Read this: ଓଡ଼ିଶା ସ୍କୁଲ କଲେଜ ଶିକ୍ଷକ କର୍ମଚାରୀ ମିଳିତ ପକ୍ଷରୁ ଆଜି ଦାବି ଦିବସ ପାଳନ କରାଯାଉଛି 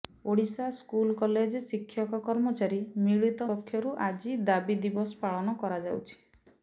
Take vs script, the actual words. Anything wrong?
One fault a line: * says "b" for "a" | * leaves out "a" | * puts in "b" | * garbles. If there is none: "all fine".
all fine